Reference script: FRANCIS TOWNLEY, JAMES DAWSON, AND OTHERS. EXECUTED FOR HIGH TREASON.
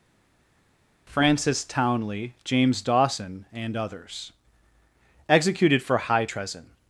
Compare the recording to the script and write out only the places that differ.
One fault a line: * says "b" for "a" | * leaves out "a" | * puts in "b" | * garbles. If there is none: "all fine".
all fine